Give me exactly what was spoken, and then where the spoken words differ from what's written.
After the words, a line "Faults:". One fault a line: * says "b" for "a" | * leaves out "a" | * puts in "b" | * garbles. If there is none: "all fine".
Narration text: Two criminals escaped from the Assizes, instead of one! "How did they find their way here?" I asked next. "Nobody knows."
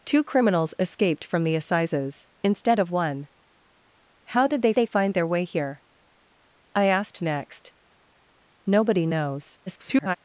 Two criminals escaped from the Assizes, instead of one! "How did they they find their way here?" I asked next. "Nobody knows." [garbled]
Faults:
* puts in "they"
* garbles